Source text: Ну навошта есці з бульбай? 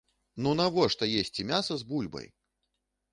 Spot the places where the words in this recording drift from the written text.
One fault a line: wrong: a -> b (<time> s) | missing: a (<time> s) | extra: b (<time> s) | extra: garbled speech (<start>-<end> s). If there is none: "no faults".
extra: мяса (1.5 s)